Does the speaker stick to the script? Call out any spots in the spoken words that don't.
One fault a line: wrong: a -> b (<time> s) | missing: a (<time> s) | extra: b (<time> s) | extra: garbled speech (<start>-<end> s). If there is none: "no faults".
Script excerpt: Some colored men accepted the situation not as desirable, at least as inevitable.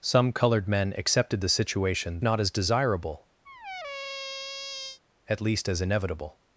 no faults